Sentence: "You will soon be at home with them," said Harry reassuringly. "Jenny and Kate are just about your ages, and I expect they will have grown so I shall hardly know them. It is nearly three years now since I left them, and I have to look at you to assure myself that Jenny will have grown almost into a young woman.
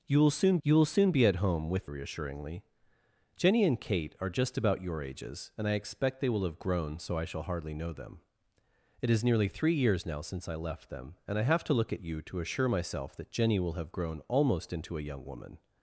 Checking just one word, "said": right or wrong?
wrong